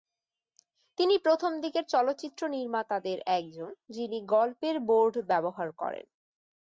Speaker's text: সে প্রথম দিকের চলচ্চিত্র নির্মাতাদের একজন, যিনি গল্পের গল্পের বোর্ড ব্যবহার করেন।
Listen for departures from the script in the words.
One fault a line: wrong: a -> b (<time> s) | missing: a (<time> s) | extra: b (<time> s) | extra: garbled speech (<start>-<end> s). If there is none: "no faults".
wrong: সে -> তিনি (1.0 s)
missing: গল্পের (4.8 s)